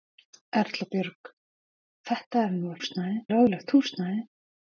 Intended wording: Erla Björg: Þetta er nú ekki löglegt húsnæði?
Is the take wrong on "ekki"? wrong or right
wrong